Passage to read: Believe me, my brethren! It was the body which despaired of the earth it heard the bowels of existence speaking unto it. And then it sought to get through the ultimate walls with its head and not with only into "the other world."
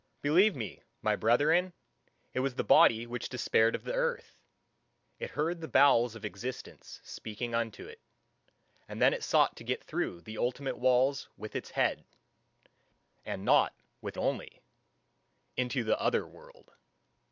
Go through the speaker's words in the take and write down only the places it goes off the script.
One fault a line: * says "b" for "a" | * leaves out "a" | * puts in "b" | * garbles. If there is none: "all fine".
all fine